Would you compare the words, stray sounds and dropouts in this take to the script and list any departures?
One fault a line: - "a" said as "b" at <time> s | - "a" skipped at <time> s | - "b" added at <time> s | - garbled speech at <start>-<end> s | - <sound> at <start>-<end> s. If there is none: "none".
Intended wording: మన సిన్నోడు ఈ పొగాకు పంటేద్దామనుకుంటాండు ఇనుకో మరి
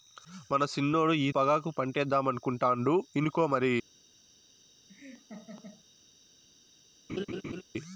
- laugh at 4.9-5.8 s
- laugh at 7.1-7.6 s